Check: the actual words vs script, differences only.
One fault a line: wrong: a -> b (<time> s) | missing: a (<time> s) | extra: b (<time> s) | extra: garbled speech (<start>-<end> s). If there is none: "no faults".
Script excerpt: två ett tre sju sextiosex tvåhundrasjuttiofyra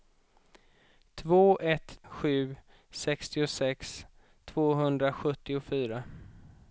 missing: tre (2.0 s)